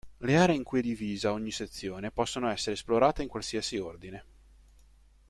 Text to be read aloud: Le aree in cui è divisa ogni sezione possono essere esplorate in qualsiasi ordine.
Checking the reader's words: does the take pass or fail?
pass